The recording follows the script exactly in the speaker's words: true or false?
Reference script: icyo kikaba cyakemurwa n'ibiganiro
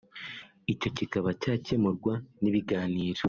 true